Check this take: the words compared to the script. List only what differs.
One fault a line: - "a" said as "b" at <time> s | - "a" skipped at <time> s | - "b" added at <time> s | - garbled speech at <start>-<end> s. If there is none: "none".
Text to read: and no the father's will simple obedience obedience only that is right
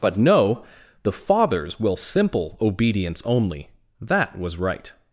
- "and" said as "but" at 0.0 s
- "obedience" skipped at 3.2 s
- "is" said as "was" at 4.4 s